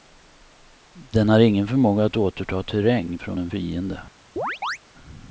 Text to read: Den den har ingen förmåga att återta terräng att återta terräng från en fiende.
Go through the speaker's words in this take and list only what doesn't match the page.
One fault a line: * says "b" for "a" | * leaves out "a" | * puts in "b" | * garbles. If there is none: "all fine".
* leaves out "den"
* leaves out "att återta terräng"